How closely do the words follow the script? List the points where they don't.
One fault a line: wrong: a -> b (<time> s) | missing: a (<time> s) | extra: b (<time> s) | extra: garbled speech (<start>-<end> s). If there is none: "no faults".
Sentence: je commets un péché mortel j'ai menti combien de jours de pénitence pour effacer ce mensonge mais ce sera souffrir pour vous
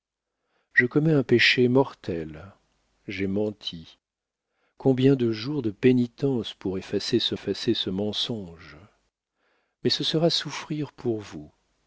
extra: effacer ce (7.3 s)